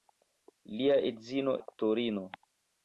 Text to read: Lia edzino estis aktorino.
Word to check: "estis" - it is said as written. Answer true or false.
false